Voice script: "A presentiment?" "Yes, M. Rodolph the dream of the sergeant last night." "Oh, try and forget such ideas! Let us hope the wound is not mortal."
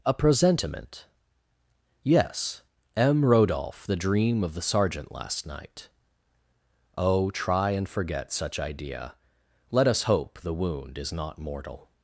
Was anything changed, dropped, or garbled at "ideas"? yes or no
yes